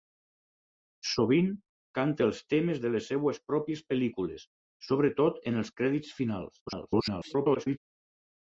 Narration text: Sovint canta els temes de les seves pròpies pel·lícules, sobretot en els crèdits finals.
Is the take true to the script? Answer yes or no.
no